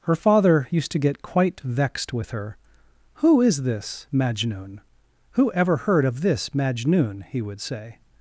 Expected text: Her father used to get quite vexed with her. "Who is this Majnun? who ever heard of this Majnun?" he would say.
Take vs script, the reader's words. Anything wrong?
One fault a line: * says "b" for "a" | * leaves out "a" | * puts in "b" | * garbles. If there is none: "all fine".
all fine